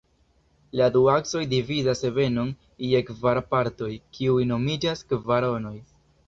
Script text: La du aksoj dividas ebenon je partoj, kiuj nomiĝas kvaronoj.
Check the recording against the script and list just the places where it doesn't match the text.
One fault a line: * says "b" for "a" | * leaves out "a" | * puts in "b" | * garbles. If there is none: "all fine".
* puts in "kvar"